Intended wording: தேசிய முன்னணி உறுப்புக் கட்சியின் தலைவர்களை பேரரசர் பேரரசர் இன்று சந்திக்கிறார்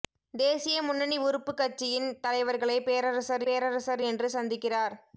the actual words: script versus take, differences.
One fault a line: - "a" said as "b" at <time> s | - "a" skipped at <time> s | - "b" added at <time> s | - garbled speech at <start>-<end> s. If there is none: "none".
none